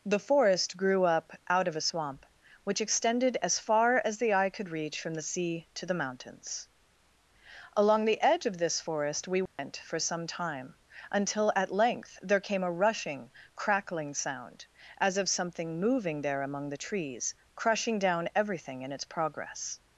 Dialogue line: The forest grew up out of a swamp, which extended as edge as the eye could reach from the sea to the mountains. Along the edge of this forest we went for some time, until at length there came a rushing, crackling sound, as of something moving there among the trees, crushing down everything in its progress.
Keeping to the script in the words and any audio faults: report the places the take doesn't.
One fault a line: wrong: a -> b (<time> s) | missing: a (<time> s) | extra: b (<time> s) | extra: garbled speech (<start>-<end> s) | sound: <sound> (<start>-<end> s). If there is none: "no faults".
wrong: edge -> far (3.6 s)
sound: dropout (9.5-9.6 s)